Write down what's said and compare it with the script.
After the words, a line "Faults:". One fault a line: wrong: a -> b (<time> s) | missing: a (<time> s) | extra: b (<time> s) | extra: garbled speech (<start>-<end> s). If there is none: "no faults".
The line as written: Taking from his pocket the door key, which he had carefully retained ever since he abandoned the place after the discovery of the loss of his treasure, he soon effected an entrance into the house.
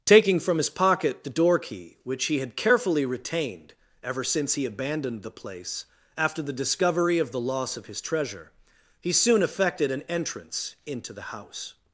Taking from his pocket the door key, which he had carefully retained ever since he abandoned the place after the discovery of the loss of his treasure, he soon effected an entrance into the house.
Faults:
no faults